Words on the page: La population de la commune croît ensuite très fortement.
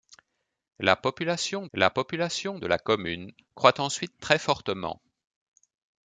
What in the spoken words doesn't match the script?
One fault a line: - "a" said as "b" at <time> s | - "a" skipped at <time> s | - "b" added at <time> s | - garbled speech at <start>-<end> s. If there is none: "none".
- "la population" added at 1.7 s